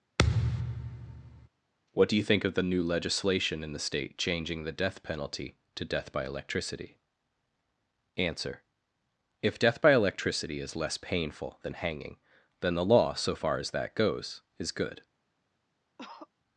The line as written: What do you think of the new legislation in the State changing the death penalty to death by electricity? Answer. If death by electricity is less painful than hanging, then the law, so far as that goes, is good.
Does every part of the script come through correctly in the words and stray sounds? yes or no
no